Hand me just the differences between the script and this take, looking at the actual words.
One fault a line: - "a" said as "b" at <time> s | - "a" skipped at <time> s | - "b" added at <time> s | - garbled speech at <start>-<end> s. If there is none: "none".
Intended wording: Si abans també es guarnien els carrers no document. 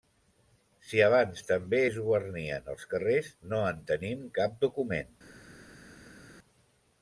- "en tenim cap" added at 3.7 s